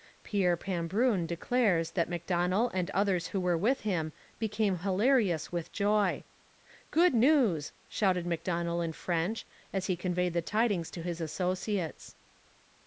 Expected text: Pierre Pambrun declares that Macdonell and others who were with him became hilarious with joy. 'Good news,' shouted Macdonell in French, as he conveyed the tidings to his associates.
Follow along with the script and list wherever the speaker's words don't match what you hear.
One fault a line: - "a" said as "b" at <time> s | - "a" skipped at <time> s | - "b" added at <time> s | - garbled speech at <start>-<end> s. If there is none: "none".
none